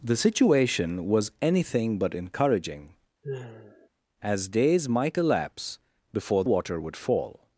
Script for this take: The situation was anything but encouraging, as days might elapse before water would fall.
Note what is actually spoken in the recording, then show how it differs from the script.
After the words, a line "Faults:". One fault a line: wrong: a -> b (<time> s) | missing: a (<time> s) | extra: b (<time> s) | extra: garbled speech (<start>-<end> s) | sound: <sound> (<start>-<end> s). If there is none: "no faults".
The situation was anything but encouraging, as days might elapse before water would fall.
Faults:
sound: sigh (3.2-3.9 s)